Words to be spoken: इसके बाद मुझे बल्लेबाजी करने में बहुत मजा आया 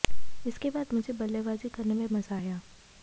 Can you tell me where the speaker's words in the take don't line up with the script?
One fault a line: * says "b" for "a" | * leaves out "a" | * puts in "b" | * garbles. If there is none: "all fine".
* leaves out "बहुत"